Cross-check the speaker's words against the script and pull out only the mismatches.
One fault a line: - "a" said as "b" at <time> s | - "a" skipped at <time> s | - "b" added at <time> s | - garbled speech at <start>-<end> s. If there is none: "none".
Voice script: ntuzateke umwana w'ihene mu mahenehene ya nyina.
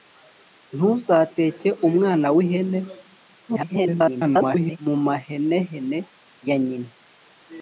- garbled speech at 3.5-4.8 s